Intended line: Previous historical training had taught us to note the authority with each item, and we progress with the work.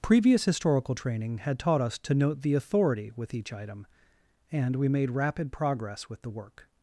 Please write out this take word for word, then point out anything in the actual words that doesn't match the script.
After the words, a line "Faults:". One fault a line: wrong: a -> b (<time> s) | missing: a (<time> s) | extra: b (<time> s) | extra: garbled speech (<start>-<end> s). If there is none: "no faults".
Previous historical training had taught us to note the authority with each item, and we made rapid progress with the work.
Faults:
extra: made rapid (4.9 s)